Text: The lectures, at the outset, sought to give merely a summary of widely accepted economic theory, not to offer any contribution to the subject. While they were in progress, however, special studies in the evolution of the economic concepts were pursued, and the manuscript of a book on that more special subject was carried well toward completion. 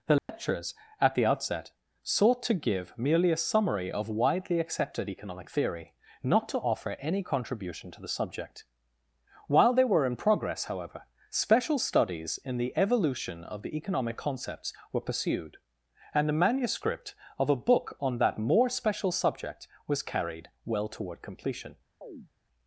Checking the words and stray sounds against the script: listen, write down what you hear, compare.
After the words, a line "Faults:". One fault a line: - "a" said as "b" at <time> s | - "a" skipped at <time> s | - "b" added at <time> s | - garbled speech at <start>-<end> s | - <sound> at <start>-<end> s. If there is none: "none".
The lectures, at the outset, sought to give merely a summary of widely accepted economic theory, not to offer any contribution to the subject. While they were in progress, however, special studies in the evolution of the economic concepts were pursued, and the manuscript of a book on that more special subject was carried well toward completion.
Faults:
- dropout at 0.2-0.3 s
- chirp at 22.0-22.3 s